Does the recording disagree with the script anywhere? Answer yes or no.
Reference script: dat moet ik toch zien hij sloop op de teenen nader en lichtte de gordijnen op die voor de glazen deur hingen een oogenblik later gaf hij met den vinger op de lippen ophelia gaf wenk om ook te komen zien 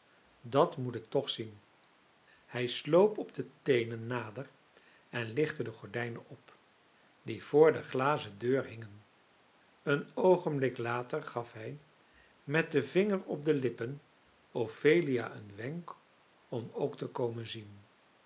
yes